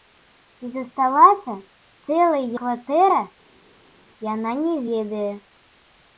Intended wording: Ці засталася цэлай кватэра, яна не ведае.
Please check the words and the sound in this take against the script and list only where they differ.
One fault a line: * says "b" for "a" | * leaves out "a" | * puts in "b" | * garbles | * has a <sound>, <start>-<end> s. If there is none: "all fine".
all fine